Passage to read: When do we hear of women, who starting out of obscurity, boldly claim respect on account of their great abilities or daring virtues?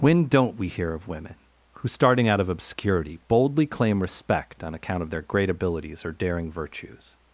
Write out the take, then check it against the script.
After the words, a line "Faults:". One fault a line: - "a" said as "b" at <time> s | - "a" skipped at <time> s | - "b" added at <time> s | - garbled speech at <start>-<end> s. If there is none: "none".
When don't we hear of women, who starting out of obscurity, boldly claim respect on account of their great abilities or daring virtues?
Faults:
- "do" said as "don't" at 0.2 s